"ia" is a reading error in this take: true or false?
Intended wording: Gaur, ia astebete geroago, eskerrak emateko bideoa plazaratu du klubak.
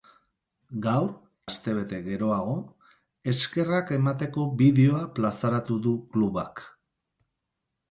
true